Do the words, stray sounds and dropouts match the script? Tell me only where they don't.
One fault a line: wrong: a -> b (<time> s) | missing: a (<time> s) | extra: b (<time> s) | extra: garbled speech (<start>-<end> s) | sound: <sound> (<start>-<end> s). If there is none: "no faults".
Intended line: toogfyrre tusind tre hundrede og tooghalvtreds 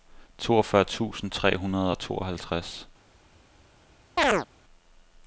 sound: chirp (4.2-4.5 s)